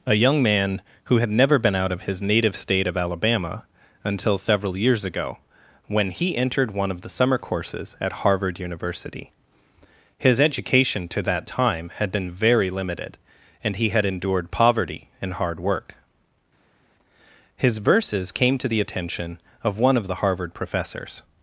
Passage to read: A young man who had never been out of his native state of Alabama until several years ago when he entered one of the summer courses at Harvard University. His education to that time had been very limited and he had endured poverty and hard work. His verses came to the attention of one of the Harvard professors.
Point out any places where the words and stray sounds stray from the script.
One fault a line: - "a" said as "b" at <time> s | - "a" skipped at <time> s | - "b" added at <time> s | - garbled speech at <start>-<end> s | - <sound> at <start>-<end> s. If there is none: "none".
none